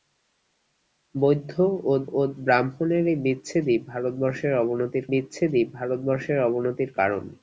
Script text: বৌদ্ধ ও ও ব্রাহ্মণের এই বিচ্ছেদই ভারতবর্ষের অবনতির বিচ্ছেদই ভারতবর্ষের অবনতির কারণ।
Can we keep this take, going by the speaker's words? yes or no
yes